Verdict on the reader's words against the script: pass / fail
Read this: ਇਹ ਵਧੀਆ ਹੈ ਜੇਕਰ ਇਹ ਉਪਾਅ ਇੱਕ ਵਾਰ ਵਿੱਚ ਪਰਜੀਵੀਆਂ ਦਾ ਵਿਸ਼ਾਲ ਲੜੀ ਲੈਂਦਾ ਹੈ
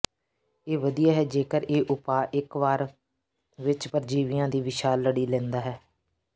fail